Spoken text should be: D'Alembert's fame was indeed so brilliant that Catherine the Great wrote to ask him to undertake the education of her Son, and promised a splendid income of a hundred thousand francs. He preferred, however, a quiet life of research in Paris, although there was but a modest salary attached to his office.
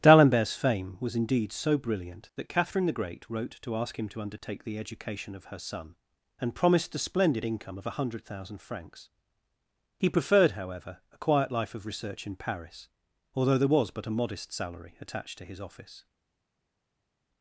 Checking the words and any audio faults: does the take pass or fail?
pass